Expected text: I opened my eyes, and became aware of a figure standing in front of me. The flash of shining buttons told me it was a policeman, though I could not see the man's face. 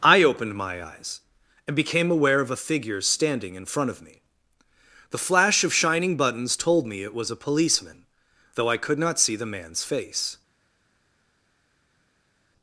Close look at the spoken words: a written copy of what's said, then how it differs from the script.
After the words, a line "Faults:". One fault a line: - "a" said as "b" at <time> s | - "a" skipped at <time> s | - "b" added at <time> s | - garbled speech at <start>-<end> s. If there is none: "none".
I opened my eyes, and became aware of a figure standing in front of me. The flash of shining buttons told me it was a policeman, though I could not see the man's face.
Faults:
none